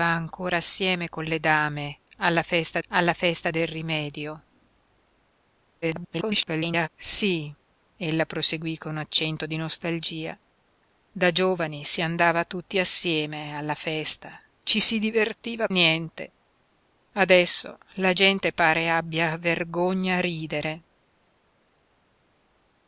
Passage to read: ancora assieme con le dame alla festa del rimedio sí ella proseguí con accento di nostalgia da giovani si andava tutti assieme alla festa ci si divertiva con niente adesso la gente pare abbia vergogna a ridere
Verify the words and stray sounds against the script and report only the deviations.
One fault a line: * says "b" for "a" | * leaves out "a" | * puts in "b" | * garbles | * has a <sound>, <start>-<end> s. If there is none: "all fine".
* puts in "alla festa"
* garbles
* leaves out "con"